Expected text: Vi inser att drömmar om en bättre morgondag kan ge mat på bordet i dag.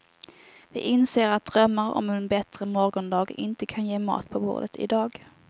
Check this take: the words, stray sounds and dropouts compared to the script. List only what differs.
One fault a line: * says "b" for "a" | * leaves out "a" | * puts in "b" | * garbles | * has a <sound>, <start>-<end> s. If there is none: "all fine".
* puts in "inte"